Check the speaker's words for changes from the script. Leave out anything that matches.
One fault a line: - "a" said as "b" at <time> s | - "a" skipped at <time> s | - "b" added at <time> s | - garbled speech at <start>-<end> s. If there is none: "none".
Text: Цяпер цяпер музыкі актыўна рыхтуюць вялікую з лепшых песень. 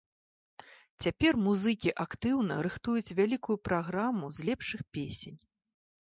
- "цяпер" skipped at 1.3 s
- "праграму" added at 3.7 s